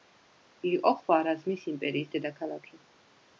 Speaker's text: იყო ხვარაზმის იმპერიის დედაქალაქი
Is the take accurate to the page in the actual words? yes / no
yes